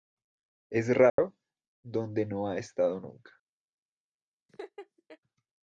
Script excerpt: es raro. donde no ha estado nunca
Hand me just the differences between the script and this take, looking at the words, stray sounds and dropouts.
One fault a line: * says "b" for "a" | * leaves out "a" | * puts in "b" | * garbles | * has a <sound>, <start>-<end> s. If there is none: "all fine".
* has a dropout, 1.1-1.2 s
* has a laugh, 4.5-5.2 s